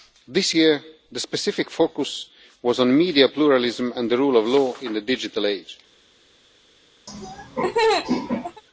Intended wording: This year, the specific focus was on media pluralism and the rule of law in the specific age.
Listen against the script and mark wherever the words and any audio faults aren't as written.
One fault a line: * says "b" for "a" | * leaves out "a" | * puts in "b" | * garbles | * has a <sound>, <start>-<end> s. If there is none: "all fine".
* says "digital" for "specific"
* has a laugh, 7.1-8.6 s